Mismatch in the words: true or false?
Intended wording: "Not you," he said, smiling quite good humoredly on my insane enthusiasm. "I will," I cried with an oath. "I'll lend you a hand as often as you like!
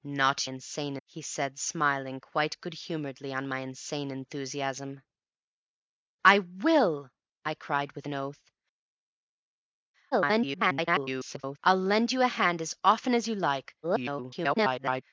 true